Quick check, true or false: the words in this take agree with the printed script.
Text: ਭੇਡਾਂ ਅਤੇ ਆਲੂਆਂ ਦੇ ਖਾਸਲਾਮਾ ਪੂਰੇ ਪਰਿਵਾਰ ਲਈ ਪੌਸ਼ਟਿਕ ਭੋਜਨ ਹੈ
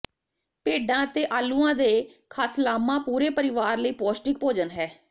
true